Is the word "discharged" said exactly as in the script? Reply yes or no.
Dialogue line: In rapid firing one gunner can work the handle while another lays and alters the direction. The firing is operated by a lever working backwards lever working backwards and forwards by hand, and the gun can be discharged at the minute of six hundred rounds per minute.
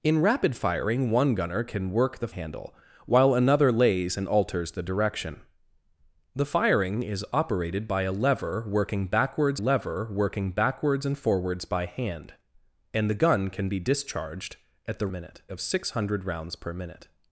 yes